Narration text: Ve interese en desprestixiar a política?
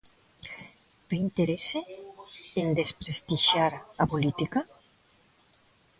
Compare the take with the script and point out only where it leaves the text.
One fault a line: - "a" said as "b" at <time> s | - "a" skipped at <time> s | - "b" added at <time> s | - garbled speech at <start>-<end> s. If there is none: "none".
none